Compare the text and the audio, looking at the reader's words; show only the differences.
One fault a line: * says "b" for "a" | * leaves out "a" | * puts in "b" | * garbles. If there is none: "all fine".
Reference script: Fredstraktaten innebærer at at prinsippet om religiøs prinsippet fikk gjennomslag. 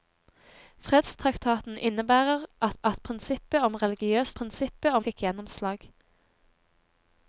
all fine